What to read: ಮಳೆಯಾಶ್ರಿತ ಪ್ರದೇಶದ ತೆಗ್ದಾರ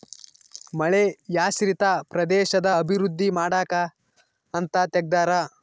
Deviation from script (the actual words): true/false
true